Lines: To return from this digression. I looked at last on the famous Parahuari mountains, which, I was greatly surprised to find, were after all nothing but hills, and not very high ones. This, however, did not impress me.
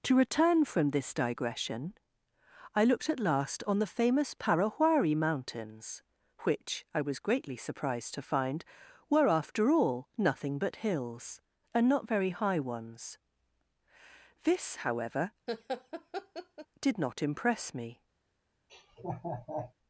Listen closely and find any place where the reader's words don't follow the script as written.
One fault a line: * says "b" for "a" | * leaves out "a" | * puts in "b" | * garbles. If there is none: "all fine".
all fine